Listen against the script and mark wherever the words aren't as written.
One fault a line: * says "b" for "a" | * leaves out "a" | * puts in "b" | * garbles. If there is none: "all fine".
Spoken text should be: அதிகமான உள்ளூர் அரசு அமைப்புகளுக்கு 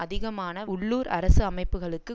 all fine